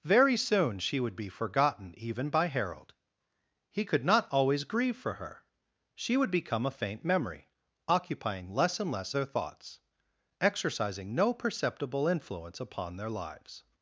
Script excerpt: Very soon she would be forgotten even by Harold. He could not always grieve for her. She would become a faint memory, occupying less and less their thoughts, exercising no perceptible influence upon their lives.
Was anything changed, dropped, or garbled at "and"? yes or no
no